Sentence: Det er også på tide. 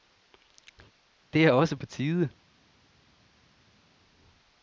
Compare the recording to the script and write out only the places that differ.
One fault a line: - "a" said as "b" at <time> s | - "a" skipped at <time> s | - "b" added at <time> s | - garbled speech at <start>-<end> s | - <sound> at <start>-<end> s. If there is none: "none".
none